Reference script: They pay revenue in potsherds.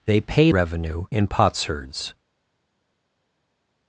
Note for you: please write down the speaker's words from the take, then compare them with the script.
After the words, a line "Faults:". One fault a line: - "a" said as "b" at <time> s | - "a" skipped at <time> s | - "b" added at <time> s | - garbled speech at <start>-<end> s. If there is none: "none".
They pay revenue in potsherds.
Faults:
none